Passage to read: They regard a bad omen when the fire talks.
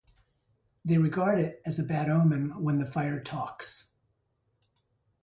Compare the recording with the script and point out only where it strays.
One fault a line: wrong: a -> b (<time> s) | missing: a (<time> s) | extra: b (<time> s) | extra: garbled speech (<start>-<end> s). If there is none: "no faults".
extra: it as (1.4 s)